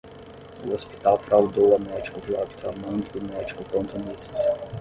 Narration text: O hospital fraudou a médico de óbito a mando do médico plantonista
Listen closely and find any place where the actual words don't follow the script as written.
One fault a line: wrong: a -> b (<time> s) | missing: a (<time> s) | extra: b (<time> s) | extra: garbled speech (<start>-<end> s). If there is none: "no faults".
no faults